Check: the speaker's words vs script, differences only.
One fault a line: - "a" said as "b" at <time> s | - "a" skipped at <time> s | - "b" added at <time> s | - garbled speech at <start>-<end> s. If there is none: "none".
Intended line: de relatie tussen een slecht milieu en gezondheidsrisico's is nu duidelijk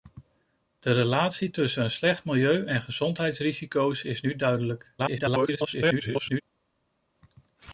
- garbled speech at 5.0-6.4 s